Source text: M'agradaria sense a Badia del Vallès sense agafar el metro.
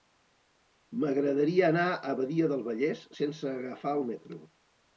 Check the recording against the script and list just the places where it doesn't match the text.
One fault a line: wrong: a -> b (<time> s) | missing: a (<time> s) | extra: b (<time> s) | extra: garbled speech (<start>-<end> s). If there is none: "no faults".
wrong: sense -> anar (1.7 s)